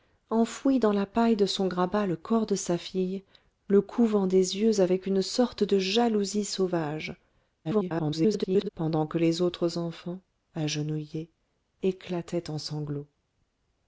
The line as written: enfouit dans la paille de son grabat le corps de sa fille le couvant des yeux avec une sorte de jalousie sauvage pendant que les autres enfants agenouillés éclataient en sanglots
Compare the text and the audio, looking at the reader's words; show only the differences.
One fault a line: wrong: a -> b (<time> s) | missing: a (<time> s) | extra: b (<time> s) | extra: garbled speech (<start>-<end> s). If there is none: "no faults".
extra: garbled speech (7.6-8.7 s)